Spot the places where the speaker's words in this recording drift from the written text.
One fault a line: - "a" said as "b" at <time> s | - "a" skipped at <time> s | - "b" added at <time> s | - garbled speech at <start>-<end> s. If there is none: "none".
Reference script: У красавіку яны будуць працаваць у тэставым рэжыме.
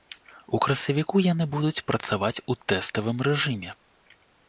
none